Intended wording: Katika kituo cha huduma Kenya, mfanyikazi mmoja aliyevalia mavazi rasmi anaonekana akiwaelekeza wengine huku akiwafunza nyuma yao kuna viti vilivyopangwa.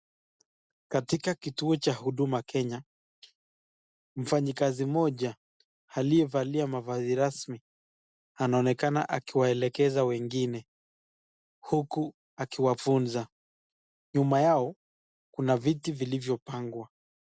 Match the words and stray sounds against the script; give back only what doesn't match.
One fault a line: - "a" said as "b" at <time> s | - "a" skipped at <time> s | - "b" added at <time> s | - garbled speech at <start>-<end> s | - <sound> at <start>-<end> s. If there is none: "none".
none